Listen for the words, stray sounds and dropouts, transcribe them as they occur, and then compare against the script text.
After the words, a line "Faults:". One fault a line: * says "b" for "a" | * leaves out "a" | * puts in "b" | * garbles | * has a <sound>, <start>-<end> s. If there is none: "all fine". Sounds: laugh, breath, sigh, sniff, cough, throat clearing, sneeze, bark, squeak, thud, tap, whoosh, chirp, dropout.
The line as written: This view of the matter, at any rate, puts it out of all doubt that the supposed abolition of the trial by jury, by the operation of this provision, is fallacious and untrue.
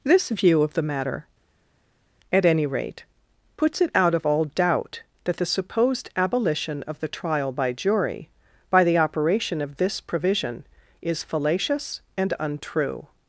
This view of the matter, at any rate, puts it out of all doubt that the supposed abolition of the trial by jury, by the operation of this provision, is fallacious and untrue.
Faults:
all fine